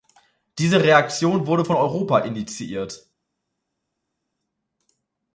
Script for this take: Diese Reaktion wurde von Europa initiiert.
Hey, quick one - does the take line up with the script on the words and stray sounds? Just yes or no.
yes